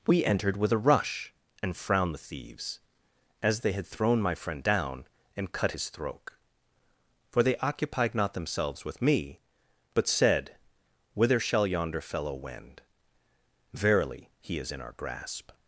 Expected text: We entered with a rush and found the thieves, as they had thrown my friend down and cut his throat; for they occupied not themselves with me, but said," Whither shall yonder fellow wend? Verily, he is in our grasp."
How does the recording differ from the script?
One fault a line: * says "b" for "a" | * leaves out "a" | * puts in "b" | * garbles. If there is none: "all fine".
* says "frowned" for "found"